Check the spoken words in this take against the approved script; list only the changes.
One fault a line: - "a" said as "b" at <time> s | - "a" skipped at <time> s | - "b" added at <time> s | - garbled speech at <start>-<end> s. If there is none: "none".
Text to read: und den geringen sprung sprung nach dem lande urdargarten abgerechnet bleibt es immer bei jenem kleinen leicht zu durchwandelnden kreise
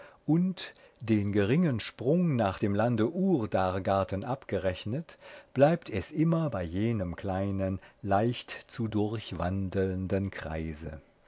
- "sprung" skipped at 2.4 s